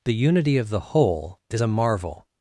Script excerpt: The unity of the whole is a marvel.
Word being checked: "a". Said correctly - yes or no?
yes